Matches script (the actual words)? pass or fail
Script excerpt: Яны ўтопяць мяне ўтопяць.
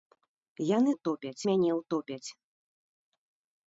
pass